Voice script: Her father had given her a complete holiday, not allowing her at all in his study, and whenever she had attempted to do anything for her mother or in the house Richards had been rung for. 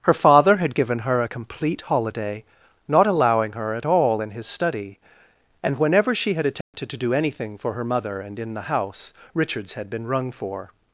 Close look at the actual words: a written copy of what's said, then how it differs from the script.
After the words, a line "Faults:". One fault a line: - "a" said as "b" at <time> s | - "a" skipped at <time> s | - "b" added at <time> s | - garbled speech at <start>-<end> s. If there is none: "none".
Her father had given her a complete holiday, not allowing her at all in his study, and whenever she had attempted to do anything for her mother and in the house Richards had been rung for.
Faults:
- "or" said as "and" at 8.2 s